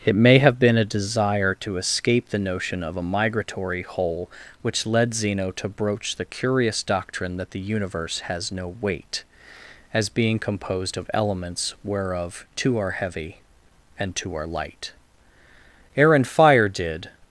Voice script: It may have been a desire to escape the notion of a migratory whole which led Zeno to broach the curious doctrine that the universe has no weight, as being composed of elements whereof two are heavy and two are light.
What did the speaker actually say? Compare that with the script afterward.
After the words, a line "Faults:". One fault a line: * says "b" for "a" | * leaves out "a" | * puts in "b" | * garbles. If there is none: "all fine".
It may have been a desire to escape the notion of a migratory whole which led Zeno to broach the curious doctrine that the universe has no weight, as being composed of elements whereof two are heavy and two are light. Air and fire did
Faults:
* puts in "Air and fire did"